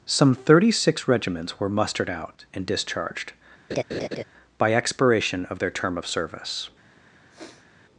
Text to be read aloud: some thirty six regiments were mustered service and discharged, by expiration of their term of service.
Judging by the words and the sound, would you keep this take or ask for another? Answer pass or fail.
fail